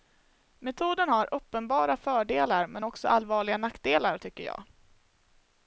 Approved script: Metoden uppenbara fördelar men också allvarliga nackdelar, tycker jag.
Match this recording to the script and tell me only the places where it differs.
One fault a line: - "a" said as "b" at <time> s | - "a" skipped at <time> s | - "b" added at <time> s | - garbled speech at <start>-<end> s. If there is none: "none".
- "har" added at 1.1 s